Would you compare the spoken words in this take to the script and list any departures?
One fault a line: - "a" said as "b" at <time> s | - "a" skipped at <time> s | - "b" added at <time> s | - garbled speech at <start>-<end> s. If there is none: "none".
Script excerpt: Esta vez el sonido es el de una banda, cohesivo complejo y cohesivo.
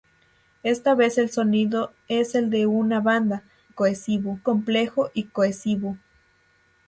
none